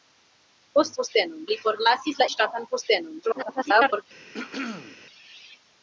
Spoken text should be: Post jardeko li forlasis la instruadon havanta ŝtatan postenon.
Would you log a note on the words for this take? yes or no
yes